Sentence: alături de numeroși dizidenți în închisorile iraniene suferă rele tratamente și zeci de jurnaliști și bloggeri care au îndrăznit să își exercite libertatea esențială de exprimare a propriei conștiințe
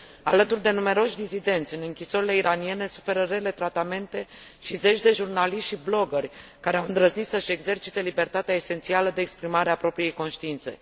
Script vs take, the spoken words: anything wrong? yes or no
no